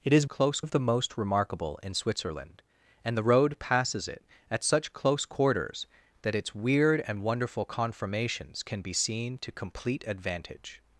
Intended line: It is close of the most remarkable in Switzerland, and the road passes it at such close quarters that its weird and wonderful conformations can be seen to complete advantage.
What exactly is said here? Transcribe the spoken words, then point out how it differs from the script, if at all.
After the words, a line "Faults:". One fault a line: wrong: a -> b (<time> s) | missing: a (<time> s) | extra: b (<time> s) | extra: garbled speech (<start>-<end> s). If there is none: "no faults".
It is close of the most remarkable in Switzerland, and the road passes it at such close quarters that its weird and wonderful conformations can be seen to complete advantage.
Faults:
no faults